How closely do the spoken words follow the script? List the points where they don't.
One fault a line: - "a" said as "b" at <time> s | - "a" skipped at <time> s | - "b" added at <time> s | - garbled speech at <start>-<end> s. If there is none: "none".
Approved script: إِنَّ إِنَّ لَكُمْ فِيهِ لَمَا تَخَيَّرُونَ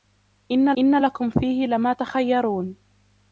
none